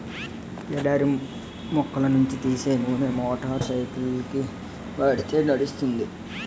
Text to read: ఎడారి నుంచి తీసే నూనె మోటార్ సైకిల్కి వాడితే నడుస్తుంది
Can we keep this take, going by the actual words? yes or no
no